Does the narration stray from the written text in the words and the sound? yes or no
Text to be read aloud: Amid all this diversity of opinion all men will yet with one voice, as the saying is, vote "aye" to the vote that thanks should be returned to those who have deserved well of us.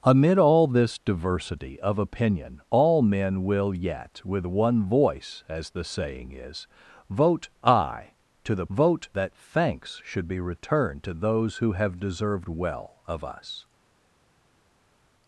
no